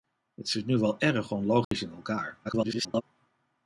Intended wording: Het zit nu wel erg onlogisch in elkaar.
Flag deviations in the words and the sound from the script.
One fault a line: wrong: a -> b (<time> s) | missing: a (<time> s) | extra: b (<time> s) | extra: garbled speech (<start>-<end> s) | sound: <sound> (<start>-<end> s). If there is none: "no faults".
sound: dropout (1.6-1.7 s)
extra: garbled speech (2.4-3.0 s)